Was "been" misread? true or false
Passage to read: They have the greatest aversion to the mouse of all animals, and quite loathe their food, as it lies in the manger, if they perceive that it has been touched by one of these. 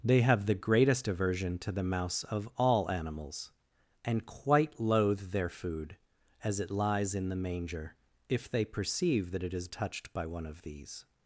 true